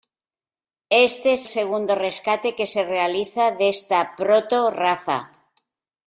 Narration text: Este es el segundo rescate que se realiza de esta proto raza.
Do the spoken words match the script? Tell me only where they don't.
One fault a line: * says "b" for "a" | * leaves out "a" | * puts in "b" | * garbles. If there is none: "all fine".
* leaves out "el"